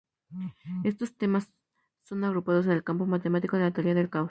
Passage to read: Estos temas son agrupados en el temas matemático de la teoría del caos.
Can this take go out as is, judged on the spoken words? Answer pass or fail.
fail